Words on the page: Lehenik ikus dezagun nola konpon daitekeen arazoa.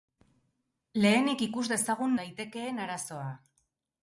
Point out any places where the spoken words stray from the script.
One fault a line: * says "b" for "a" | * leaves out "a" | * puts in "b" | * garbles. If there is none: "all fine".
* leaves out "nola konpon"